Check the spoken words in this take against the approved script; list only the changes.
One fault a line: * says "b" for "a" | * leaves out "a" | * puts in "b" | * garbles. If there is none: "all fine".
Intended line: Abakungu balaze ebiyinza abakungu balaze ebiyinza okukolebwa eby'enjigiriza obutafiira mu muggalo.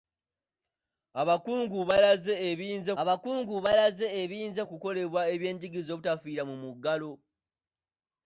all fine